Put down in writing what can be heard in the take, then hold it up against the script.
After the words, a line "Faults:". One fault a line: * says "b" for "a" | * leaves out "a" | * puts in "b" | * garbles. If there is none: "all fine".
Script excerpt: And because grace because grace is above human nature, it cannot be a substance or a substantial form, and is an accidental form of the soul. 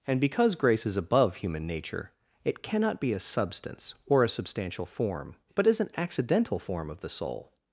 And because grace is above human nature, it cannot be a substance or a substantial form, but is an accidental form of the soul.
Faults:
* leaves out "because grace"
* says "but" for "and"